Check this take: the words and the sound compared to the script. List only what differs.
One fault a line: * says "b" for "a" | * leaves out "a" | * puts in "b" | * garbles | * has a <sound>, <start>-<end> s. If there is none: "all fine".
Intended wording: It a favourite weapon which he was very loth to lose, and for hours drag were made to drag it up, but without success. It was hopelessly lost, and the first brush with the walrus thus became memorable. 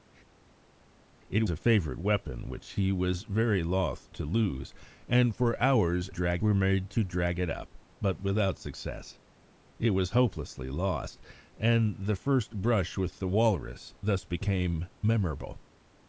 all fine